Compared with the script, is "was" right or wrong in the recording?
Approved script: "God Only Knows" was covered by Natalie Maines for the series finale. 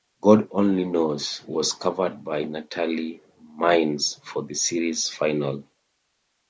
right